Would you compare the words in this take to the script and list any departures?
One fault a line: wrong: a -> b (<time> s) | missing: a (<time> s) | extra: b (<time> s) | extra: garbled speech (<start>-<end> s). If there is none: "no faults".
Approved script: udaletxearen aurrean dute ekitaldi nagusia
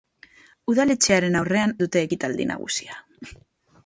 no faults